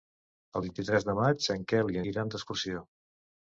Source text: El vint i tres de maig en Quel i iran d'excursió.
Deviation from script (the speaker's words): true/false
false